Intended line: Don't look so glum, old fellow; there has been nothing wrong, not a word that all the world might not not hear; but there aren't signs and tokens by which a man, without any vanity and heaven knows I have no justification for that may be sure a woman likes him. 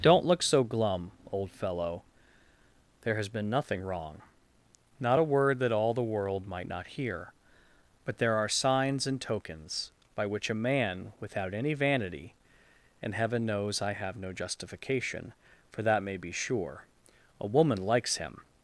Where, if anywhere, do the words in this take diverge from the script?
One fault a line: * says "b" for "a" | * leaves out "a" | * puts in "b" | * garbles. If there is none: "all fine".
* leaves out "not"
* says "are" for "aren't"